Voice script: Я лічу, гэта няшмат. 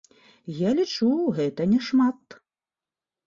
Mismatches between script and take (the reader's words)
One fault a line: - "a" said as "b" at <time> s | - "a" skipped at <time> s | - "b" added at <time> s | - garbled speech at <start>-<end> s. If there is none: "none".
none